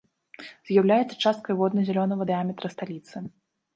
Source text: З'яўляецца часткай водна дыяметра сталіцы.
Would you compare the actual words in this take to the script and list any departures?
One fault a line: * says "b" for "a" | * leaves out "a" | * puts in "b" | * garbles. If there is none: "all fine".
* puts in "зялёнага"